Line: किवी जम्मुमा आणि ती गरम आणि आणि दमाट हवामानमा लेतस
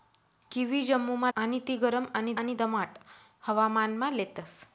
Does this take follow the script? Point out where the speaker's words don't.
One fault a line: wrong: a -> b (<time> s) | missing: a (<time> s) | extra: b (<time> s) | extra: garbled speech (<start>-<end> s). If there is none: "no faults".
no faults